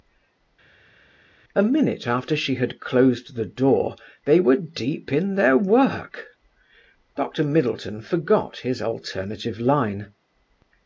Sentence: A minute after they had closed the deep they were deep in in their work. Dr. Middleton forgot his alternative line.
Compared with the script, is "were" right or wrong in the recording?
right